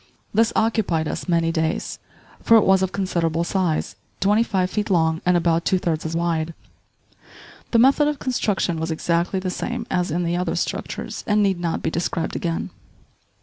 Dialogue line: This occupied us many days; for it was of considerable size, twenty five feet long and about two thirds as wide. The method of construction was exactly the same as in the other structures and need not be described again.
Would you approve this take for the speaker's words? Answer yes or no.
yes